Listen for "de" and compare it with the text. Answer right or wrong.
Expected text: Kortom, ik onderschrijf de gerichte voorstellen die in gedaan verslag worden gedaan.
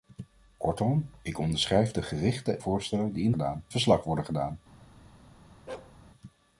right